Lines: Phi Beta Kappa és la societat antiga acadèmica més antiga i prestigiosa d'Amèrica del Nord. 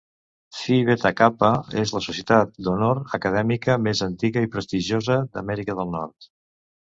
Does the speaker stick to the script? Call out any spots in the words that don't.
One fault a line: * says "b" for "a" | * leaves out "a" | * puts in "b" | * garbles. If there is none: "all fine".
* says "d'honor" for "antiga"